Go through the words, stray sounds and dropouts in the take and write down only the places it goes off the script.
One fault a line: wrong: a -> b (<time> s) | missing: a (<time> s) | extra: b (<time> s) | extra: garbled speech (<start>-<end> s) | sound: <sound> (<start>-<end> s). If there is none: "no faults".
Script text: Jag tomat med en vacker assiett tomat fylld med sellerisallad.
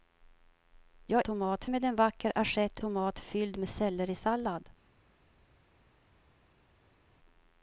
no faults